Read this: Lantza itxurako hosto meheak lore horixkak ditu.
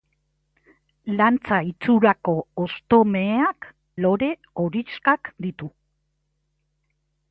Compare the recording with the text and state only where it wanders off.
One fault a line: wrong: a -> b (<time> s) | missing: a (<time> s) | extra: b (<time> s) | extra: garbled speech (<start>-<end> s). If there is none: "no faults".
no faults